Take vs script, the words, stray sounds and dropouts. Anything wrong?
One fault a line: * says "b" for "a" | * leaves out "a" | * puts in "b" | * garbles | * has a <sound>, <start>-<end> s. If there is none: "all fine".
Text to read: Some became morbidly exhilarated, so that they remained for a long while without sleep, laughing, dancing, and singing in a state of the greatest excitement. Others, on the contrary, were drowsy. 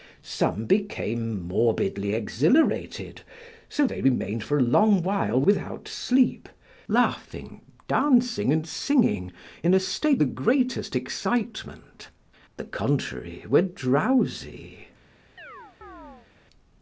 * leaves out "that"
* leaves out "of"
* leaves out "Others on"
* has a chirp, 15.4-16.3 s